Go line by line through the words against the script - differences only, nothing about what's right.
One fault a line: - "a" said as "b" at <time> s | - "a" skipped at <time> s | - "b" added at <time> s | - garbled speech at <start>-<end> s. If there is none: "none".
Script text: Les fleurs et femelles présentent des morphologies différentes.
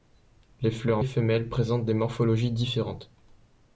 none